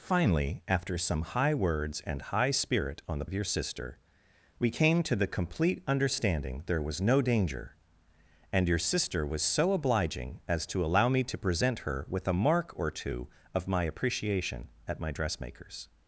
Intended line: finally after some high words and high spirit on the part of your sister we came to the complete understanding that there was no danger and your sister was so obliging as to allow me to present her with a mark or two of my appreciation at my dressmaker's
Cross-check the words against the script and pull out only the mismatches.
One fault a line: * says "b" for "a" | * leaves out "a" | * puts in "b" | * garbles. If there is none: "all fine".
* leaves out "part"
* leaves out "that"